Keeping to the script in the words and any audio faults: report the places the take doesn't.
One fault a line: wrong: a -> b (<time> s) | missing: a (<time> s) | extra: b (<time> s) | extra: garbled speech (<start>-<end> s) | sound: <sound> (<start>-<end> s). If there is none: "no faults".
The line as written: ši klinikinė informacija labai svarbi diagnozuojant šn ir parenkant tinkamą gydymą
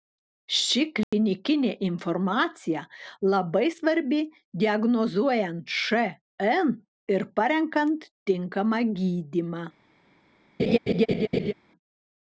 sound: dropout (1.0-1.1 s)
sound: laugh (10.6-11.5 s)